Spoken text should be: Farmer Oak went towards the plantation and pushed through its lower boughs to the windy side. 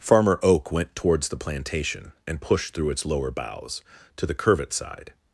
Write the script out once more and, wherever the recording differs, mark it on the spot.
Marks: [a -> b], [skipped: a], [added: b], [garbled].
Farmer Oak went towards the plantation and pushed through its lower boughs to the [windy -> curvet] side.